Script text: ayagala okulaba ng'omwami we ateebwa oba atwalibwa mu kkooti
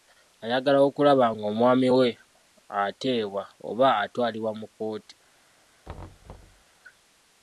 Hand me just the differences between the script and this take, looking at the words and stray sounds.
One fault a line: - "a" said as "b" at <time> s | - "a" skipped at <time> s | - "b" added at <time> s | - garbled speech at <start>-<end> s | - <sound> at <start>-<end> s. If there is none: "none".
- thud at 5.8-6.6 s